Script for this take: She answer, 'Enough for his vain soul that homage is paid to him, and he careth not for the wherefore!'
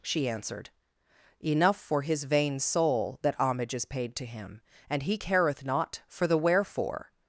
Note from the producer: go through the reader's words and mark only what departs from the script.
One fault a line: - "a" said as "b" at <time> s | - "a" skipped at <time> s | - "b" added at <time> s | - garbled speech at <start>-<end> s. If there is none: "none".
- "answer" said as "answered" at 0.3 s